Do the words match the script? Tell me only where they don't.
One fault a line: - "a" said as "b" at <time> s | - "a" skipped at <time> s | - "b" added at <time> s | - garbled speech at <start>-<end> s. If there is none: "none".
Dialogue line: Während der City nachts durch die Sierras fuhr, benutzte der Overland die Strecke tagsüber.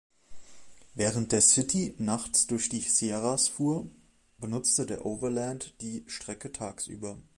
none